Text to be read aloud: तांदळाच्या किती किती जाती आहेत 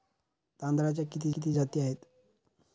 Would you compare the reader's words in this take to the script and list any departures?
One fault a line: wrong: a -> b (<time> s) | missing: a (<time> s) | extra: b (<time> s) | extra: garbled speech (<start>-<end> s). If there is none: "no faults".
no faults